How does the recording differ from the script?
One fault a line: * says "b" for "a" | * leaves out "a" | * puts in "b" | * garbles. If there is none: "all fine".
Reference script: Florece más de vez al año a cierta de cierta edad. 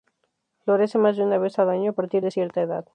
* puts in "una"
* says "partir" for "cierta"